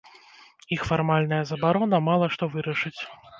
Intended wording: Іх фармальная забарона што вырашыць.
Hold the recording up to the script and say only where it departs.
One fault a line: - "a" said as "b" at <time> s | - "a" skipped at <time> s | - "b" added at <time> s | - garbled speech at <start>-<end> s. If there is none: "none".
- "мала" added at 2.1 s